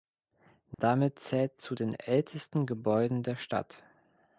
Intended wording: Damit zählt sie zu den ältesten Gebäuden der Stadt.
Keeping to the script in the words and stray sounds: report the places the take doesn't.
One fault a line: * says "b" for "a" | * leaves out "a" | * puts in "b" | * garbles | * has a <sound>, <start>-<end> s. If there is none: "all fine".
* has a dropout, 0.7-0.8 s
* leaves out "sie"